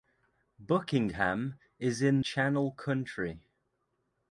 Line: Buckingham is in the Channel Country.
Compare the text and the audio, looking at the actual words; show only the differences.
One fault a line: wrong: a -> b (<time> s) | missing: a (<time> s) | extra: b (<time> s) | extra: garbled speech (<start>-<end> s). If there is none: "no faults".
missing: the (2.2 s)